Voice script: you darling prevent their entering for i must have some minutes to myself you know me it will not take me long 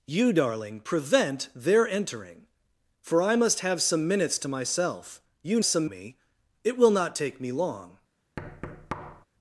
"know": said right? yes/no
no